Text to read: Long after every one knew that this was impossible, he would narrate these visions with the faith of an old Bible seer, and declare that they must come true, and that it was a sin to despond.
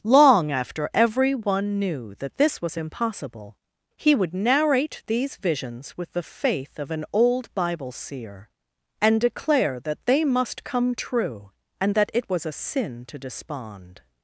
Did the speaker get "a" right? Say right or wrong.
right